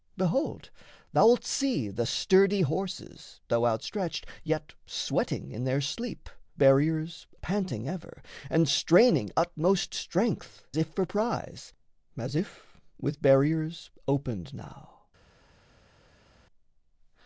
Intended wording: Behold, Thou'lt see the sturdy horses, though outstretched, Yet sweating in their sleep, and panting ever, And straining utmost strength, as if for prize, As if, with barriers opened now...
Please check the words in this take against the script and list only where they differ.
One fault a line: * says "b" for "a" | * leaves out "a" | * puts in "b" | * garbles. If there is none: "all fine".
* says "barriers" for "and"
* leaves out "as"